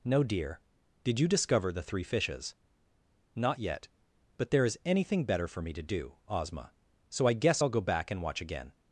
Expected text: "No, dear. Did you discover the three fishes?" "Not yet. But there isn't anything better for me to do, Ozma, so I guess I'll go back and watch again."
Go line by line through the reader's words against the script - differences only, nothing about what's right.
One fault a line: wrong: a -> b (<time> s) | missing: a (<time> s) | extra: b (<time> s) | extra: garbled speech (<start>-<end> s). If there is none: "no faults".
wrong: isn't -> is (4.6 s)